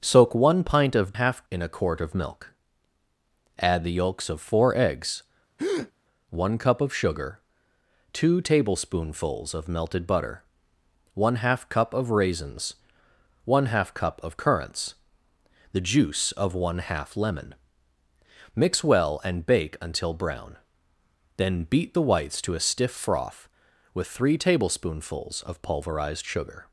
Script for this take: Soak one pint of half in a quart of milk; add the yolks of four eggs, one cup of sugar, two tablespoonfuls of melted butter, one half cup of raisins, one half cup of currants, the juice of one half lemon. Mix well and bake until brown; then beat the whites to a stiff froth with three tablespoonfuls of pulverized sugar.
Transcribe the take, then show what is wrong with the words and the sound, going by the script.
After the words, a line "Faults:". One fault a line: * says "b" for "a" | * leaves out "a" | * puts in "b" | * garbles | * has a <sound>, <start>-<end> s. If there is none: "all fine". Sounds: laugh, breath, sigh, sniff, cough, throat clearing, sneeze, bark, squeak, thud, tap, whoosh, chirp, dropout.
Soak one pint of half in a quart of milk; add the yolks of four eggs, one cup of sugar, two tablespoonfuls of melted butter, one half cup of raisins, one half cup of currants, the juice of one half lemon. Mix well and bake until brown; then beat the whites to a stiff froth with three tablespoonfuls of pulverized sugar.
Faults:
* has a breath, 5.6-5.9 s